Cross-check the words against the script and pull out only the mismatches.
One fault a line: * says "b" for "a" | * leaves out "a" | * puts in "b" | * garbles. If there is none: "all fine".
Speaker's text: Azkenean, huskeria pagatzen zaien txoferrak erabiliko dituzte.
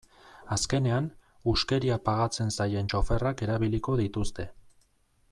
all fine